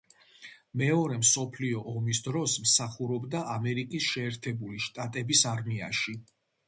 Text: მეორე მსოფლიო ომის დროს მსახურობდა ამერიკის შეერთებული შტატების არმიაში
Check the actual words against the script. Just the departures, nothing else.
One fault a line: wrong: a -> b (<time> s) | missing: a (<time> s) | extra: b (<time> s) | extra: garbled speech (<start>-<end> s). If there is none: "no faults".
no faults